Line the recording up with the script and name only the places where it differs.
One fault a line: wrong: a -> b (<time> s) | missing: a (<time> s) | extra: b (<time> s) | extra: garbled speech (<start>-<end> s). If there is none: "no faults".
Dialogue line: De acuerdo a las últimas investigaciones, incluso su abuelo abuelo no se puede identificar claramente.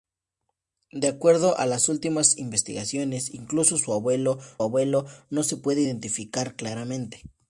no faults